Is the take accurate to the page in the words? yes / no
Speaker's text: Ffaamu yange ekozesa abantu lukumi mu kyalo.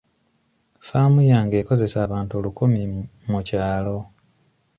yes